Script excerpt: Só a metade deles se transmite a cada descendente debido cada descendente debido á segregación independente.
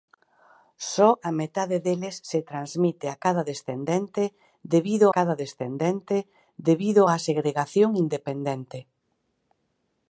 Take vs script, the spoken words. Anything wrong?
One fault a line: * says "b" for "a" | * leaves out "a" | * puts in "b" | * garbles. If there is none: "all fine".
all fine